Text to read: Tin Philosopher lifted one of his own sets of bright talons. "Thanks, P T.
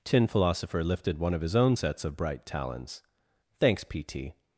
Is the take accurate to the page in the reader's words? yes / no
yes